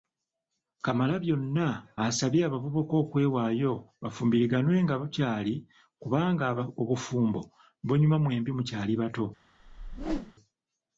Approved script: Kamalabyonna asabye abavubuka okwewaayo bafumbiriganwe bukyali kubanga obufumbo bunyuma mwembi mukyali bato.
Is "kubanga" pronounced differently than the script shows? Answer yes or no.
no